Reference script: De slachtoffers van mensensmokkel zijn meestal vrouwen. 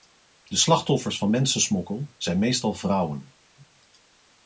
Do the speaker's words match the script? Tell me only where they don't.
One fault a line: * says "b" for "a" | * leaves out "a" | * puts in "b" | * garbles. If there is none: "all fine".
all fine